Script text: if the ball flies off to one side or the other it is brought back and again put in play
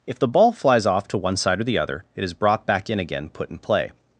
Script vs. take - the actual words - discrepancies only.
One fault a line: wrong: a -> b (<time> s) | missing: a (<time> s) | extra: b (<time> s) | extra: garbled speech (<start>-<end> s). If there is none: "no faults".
wrong: and -> in (2.9 s)